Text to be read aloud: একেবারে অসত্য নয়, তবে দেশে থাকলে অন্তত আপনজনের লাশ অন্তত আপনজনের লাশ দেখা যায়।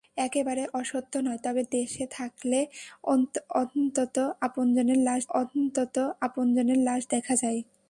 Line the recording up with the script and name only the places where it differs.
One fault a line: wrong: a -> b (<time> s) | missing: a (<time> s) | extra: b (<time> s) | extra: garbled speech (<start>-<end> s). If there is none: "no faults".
no faults